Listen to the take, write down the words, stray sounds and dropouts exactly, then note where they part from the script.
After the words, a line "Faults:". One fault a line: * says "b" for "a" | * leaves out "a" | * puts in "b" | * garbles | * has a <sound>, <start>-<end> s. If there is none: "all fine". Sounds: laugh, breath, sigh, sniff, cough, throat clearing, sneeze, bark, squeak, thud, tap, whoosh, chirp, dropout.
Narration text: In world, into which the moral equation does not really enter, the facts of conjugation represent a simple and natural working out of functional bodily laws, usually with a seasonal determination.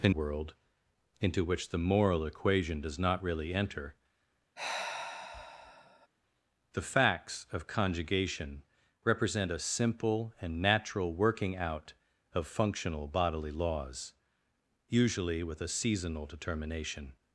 In world, into which the moral equation does not really enter, the facts of conjugation represent a simple and natural working out of functional bodily laws, usually with a seasonal determination.
Faults:
* has a sigh, 4.6-6.1 s